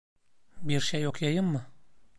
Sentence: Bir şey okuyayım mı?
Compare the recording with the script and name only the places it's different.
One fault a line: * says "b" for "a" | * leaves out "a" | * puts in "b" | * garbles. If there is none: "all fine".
all fine